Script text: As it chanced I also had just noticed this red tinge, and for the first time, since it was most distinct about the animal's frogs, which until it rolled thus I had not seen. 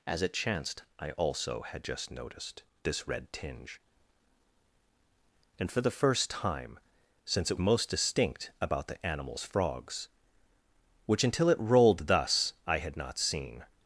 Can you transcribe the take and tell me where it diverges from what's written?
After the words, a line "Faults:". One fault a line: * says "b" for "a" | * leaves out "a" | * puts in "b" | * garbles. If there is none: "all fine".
As it chanced I also had just noticed this red tinge, and for the first time, since it most distinct about the animal's frogs, which until it rolled thus I had not seen.
Faults:
* leaves out "was"